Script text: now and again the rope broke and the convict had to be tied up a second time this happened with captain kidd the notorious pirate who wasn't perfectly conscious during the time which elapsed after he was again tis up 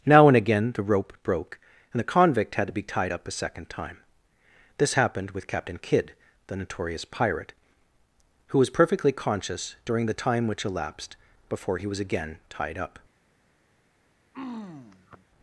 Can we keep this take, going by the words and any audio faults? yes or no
no